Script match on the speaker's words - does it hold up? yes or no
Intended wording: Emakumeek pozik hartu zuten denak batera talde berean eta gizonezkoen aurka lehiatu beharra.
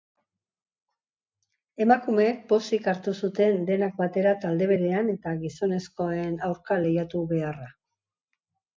yes